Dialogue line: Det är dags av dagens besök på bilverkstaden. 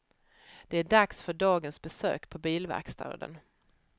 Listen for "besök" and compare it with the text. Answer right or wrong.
right